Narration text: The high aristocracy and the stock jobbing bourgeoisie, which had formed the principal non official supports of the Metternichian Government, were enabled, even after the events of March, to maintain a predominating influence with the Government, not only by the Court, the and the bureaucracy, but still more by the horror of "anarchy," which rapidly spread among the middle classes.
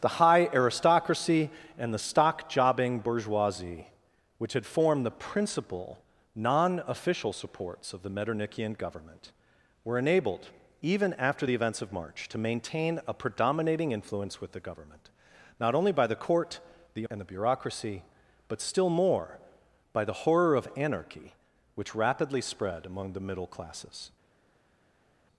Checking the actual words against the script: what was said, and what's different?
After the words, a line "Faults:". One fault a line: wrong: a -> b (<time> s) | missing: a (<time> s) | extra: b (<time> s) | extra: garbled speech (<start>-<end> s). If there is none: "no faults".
The high aristocracy and the stock jobbing bourgeoisie, which had formed the principal non official supports of the Metternichian Government, were enabled, even after the events of March, to maintain a predominating influence with the Government, not only by the Court, the and the bureaucracy, but still more by the horror of "anarchy," which rapidly spread among the middle classes.
Faults:
no faults